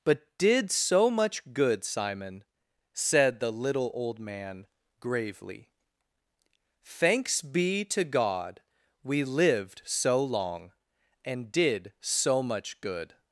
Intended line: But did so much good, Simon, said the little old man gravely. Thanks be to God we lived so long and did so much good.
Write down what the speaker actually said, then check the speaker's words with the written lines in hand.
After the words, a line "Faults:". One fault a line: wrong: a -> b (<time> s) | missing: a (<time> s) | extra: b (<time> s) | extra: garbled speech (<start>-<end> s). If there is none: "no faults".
But did so much good, Simon, said the little old man gravely. Thanks be to God we lived so long and did so much good.
Faults:
no faults